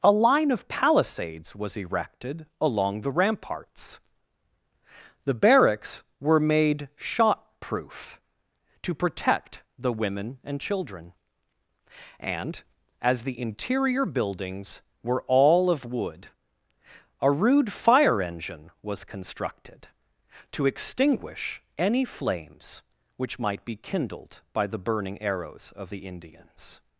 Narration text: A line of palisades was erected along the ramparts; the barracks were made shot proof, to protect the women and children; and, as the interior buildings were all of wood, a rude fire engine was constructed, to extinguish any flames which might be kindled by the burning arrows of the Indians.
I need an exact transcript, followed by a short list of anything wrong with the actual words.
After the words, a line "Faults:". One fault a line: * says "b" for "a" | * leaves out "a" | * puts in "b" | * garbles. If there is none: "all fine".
A line of palisades was erected along the ramparts; the barracks were made shot proof, to protect the women and children; and, as the interior buildings were all of wood, a rude fire engine was constructed, to extinguish any flames which might be kindled by the burning arrows of the Indians.
Faults:
all fine